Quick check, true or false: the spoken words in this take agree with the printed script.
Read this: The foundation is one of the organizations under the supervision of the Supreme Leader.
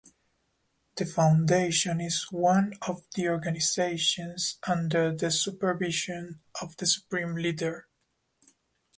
true